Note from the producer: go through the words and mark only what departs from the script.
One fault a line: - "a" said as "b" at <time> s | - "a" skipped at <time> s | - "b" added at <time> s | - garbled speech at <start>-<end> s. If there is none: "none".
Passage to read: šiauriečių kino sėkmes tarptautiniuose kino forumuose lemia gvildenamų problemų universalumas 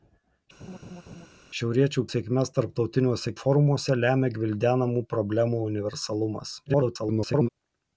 - "kino" skipped at 2.0 s
- "kino" skipped at 3.3 s
- garbled speech at 6.7-7.5 s